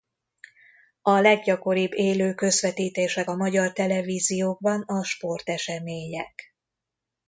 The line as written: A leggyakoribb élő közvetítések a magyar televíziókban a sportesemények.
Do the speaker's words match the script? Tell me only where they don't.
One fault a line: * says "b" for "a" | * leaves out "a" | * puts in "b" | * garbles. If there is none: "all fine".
all fine